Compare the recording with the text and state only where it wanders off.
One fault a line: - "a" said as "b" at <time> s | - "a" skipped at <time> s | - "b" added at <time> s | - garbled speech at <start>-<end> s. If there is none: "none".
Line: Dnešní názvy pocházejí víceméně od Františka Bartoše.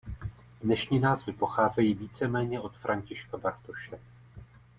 none